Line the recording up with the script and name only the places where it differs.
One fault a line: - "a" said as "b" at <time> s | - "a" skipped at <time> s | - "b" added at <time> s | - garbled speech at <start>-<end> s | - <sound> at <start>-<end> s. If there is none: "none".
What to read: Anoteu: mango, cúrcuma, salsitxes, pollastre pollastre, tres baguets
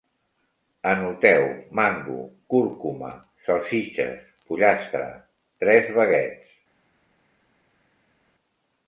- "pollastre" skipped at 5.1 s